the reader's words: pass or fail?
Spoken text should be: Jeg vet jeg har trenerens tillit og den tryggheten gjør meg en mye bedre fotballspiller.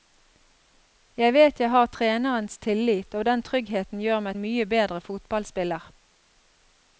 pass